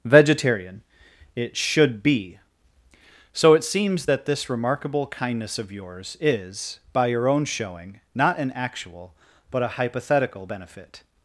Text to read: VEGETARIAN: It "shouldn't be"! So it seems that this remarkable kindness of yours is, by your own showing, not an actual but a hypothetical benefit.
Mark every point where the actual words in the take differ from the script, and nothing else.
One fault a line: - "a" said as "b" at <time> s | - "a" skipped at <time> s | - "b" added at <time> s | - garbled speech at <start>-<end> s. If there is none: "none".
- "shouldn't" said as "should" at 1.6 s